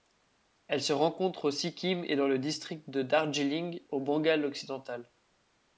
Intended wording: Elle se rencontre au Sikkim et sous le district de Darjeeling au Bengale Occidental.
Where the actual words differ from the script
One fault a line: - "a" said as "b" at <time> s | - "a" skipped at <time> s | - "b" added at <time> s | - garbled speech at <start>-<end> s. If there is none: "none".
- "sous" said as "dans" at 2.1 s